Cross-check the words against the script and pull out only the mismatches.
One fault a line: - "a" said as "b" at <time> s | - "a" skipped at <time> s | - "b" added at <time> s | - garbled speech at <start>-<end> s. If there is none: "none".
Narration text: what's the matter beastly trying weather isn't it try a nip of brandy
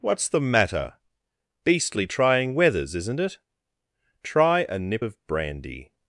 - "weather" said as "weathers" at 2.5 s